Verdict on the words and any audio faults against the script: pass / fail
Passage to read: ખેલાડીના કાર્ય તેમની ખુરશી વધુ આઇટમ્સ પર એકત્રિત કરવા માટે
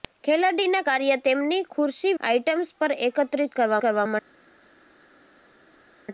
fail